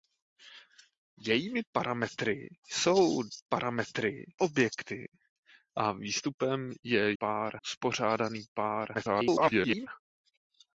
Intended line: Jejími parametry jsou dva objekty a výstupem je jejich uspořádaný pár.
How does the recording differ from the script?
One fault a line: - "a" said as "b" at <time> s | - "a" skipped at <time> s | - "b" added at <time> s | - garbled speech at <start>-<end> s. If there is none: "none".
- "dva" said as "parametry" at 3.5 s
- "jejich" said as "pár" at 7.2 s
- garbled speech at 8.9-9.9 s